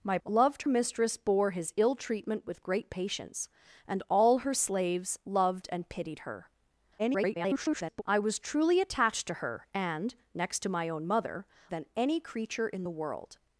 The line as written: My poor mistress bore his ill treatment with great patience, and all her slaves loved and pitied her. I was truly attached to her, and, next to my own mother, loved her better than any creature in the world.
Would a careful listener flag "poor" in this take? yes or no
yes